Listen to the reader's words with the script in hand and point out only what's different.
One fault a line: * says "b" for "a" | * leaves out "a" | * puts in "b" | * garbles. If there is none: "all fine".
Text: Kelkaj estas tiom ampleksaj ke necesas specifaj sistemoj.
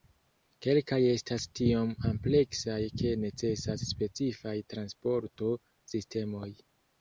* puts in "transporto"